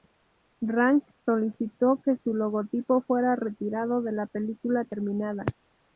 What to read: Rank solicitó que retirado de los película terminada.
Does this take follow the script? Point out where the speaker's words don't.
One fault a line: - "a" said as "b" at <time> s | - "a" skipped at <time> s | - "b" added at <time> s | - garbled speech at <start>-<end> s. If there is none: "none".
- "su logotipo fuera" added at 2.2 s
- "los" said as "la" at 4.1 s